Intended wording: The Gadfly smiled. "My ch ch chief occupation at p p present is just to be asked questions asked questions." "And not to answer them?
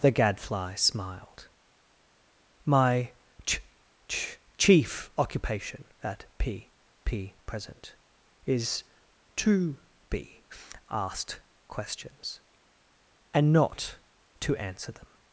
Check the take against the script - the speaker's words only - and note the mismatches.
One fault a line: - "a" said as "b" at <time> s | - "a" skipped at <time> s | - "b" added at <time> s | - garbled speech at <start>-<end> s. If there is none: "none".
- "just" skipped at 8.8 s
- "asked questions" skipped at 12.4 s